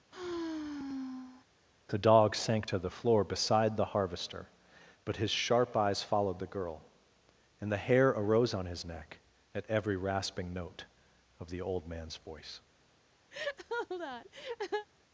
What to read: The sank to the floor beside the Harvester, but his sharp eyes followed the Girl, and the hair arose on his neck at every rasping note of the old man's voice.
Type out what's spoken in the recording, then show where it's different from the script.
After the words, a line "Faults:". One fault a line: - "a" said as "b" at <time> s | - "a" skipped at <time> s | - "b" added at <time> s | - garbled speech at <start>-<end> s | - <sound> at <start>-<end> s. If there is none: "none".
The dog sank to the floor beside the Harvester, but his sharp eyes followed the Girl, and the hair arose on his neck at every rasping note of the old man's voice.
Faults:
- sigh at 0.1-1.5 s
- "dog" added at 2.0 s
- laugh at 13.3-14.9 s